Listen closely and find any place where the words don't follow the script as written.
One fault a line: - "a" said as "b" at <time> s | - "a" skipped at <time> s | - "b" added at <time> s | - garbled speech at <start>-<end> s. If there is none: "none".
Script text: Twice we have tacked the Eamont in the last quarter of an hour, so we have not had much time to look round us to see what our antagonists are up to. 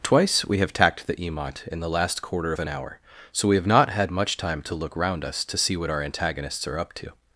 none